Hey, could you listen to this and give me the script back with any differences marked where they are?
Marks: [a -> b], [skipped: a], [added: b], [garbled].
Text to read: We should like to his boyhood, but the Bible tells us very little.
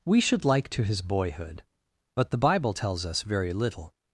We should like to his boyhood, but the Bible tells us very little.